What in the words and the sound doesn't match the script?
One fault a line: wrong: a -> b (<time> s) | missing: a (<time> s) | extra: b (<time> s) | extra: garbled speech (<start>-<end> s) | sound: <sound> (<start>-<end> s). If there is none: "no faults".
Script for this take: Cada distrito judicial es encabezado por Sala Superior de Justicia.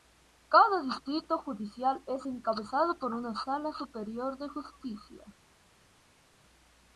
extra: una (3.1 s)